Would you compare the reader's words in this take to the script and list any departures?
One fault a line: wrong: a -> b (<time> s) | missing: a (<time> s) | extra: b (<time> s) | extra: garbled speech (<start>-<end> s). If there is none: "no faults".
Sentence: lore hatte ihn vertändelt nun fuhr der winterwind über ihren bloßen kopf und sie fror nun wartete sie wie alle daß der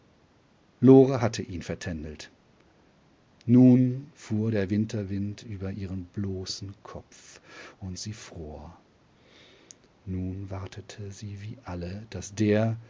no faults